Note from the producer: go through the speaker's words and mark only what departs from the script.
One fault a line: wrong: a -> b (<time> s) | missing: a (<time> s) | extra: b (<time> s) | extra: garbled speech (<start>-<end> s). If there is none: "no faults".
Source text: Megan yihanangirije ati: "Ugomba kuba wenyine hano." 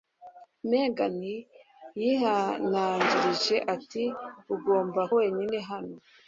missing: kuba (5.0 s)